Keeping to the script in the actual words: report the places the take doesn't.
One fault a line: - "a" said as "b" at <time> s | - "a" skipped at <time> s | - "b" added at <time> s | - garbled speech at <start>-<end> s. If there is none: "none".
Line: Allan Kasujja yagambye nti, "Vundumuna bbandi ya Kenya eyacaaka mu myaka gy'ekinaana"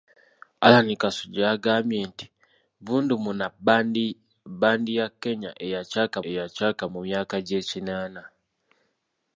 - "eyacaaka" added at 6.3 s